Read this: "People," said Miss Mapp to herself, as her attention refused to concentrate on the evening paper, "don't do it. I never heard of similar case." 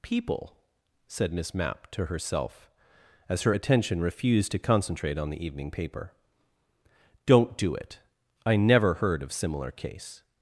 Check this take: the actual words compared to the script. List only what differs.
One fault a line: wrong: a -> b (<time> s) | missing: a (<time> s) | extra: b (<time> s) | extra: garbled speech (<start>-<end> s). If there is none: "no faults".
no faults